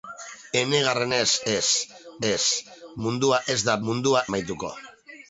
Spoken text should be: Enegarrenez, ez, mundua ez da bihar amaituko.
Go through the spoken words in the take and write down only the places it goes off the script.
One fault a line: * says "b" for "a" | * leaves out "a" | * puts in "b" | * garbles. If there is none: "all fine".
* puts in "ez"
* says "mundua" for "bihar"